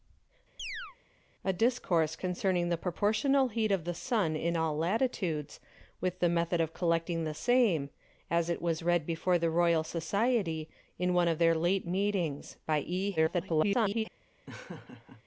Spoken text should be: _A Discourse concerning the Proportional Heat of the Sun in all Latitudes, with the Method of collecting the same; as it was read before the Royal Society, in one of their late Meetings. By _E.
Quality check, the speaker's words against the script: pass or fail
fail